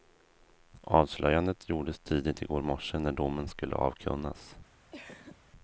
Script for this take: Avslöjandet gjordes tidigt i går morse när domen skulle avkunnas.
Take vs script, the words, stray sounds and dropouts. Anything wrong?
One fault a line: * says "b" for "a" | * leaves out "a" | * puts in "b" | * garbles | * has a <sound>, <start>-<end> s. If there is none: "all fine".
* has a cough, 4.9-5.4 s